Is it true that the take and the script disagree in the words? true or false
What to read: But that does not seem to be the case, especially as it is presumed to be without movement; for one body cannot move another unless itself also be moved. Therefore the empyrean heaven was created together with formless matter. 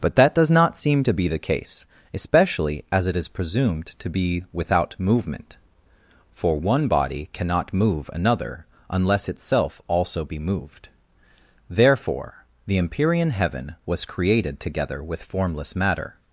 false